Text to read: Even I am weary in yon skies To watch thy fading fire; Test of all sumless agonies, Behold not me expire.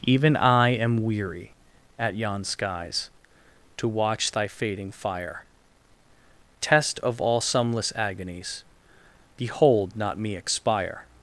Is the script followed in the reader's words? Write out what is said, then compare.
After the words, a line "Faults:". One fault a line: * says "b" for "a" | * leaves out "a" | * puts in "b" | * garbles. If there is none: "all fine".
Even I am weary at yon skies To watch thy fading fire; Test of all sumless agonies, Behold not me expire.
Faults:
* says "at" for "in"